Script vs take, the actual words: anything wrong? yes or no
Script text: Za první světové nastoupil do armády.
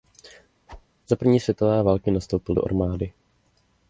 yes